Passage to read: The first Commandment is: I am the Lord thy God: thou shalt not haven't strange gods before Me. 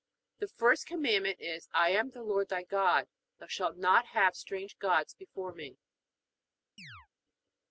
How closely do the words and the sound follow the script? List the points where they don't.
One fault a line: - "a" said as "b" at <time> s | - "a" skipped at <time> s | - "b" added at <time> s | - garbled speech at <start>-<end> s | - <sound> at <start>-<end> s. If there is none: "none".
- "haven't" said as "have" at 4.1 s
- chirp at 6.8-7.1 s